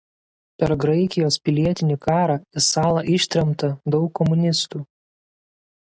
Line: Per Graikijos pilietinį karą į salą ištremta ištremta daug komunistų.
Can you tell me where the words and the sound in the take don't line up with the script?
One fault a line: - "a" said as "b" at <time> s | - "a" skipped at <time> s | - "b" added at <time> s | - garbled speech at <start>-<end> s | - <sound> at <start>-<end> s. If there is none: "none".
- "ištremta" skipped at 3.7 s